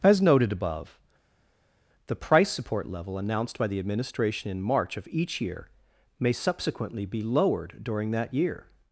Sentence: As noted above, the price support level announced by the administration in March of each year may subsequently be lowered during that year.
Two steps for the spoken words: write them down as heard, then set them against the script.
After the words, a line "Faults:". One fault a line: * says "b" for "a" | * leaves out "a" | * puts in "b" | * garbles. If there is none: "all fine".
As noted above, the price support level announced by the administration in March of each year may subsequently be lowered during that year.
Faults:
all fine